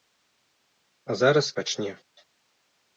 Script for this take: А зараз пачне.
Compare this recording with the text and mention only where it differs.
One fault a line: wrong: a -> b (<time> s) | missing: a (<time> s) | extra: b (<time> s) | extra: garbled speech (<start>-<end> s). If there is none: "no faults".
no faults